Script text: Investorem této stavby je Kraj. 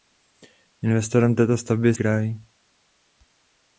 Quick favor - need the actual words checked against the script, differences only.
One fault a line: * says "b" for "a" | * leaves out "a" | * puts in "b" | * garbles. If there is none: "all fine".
all fine